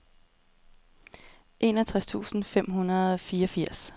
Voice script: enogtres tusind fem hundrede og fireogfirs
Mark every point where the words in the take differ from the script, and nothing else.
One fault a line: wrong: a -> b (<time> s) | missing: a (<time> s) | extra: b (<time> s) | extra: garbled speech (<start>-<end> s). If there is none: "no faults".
no faults